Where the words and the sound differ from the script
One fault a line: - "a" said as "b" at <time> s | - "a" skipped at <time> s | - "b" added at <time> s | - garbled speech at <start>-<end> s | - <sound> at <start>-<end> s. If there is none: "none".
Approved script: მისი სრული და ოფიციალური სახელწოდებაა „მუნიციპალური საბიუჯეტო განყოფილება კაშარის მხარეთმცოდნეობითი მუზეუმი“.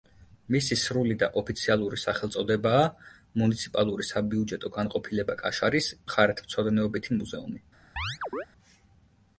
- chirp at 8.0-8.5 s